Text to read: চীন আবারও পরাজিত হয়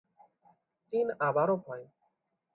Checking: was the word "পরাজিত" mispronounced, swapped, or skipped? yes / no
yes